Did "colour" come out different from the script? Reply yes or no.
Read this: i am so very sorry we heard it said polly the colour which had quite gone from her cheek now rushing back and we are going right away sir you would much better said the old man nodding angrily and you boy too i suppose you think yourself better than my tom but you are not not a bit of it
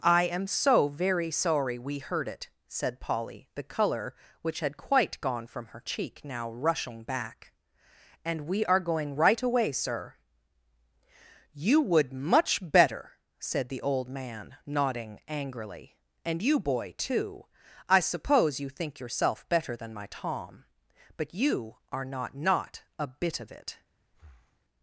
no